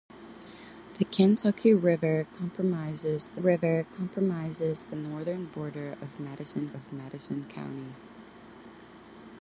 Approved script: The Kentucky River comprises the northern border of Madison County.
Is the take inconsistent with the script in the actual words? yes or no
yes